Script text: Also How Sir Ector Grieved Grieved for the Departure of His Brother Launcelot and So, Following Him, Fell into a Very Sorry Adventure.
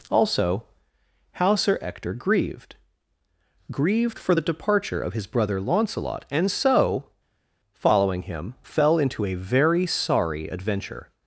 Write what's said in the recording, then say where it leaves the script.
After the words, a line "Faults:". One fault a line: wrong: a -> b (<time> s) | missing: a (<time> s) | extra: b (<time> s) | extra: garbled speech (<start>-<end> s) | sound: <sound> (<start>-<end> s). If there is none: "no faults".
Also How Sir Ector Grieved Grieved for the Departure of His Brother Launcelot and So, Following Him, Fell into a Very Sorry Adventure.
Faults:
no faults